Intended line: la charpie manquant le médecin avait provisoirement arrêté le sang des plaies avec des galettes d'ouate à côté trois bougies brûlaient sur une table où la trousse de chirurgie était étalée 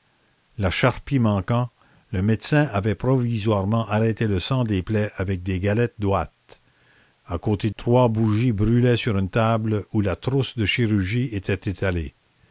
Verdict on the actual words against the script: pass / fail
pass